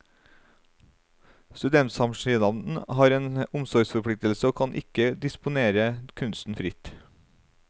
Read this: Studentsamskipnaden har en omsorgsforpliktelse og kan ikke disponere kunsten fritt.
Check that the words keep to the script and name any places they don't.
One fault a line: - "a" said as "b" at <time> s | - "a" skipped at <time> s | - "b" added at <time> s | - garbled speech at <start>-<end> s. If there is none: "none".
none